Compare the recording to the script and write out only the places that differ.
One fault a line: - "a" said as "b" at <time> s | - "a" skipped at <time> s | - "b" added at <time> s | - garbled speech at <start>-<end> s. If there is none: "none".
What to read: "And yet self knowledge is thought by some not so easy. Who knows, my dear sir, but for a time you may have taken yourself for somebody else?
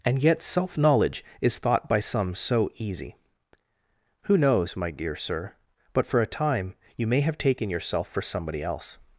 - "not" skipped at 2.3 s